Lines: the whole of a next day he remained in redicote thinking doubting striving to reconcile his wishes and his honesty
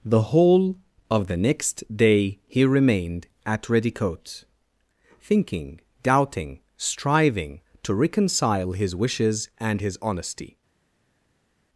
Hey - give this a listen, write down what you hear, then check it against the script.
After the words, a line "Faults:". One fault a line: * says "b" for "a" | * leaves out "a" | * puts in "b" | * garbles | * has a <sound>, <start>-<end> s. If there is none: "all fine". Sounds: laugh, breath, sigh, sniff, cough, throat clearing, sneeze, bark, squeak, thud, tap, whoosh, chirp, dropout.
the whole of the next day he remained at redicote thinking doubting striving to reconcile his wishes and his honesty
Faults:
* says "the" for "a"
* says "at" for "in"